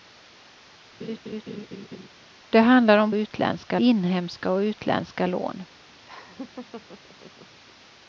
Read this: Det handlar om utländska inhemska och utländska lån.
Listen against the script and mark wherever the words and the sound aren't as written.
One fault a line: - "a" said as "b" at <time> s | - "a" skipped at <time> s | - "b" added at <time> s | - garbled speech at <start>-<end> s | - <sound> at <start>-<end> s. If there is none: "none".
- laugh at 1.0-2.1 s
- laugh at 6.0-7.6 s